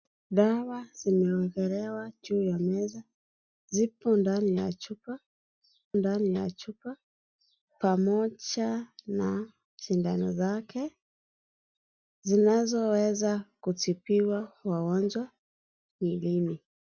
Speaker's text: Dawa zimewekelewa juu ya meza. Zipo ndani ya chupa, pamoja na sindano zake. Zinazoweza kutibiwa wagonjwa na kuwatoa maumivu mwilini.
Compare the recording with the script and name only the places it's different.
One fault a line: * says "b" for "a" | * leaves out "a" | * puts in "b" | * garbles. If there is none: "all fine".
* puts in "ndani ya chupa"
* leaves out "na kuwatoa maumivu"